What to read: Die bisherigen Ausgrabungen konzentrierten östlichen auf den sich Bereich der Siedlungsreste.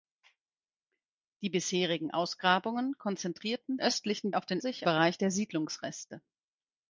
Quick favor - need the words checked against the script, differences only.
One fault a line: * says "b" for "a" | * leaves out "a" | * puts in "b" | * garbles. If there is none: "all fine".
all fine